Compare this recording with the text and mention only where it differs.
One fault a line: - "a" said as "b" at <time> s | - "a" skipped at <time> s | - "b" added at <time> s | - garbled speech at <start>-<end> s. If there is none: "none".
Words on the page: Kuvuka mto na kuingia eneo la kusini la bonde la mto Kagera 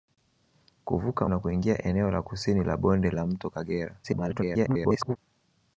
- "mto" skipped at 1.3 s
- garbled speech at 4.0-5.2 s